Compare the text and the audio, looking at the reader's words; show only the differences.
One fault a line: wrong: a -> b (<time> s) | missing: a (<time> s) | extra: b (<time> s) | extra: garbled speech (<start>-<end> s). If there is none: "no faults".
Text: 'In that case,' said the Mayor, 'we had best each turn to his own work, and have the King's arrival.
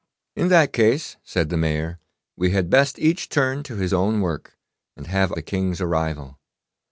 no faults